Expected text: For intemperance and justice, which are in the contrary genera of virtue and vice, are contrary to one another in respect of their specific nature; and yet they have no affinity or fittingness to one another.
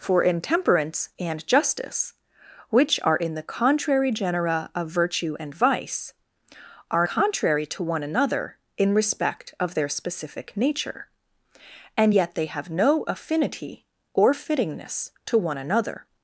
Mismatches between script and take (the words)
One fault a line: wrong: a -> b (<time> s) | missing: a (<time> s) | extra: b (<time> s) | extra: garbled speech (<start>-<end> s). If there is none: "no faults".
no faults